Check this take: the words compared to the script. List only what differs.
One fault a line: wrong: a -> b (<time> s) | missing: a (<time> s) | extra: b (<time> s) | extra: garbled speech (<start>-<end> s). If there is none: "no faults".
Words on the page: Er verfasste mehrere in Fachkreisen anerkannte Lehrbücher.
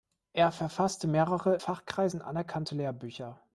missing: in (1.6 s)